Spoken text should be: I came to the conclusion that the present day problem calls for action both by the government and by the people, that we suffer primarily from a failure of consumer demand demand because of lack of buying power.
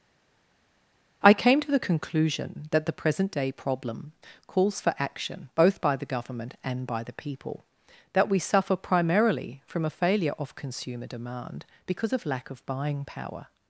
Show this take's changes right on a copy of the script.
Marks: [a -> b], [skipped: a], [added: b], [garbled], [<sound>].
I came to the conclusion that the present day problem calls for action both by the government and by the people, that we suffer primarily from a failure of consumer demand [skipped: demand] because of lack of buying power.